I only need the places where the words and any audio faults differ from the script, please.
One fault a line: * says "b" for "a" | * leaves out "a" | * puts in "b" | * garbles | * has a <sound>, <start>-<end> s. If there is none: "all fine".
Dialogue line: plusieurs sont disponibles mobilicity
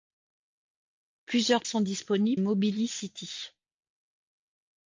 all fine